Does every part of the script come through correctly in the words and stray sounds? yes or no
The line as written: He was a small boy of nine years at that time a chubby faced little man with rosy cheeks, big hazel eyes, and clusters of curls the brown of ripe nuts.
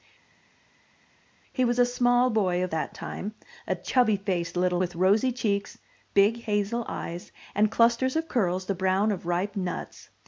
no